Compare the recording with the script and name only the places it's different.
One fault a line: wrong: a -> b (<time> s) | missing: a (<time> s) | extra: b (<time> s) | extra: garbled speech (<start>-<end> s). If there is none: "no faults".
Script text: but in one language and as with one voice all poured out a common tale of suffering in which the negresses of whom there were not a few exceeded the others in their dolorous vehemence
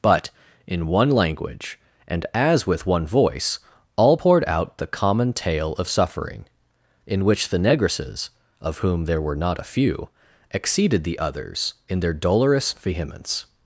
wrong: a -> the (4.8 s)